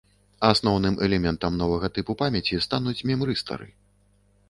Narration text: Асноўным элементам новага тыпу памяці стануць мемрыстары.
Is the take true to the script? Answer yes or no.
yes